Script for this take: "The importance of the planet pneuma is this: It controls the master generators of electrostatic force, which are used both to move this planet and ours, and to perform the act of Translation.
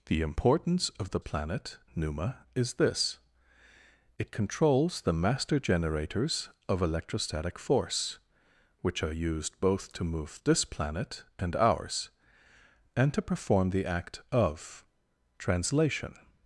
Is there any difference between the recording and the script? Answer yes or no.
no